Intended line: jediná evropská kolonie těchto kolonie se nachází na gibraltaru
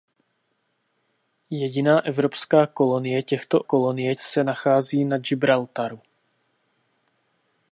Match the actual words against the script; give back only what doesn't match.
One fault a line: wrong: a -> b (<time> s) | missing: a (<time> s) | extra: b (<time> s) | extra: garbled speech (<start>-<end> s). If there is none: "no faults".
no faults